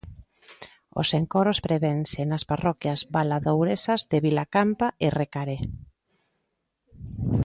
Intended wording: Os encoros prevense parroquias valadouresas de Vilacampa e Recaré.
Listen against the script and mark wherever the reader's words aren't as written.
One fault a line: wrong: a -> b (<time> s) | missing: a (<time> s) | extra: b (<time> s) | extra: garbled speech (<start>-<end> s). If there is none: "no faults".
extra: nas (2.3 s)